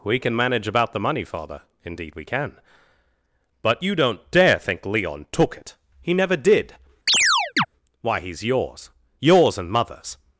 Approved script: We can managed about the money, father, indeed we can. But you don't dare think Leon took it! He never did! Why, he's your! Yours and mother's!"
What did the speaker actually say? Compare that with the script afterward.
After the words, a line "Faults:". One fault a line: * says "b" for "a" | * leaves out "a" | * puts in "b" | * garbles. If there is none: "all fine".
We can manage about the money, father, indeed we can. But you don't dare think Leon took it! He never did! Why, he's yours! Yours and mother's!"
Faults:
* says "manage" for "managed"
* says "yours" for "your"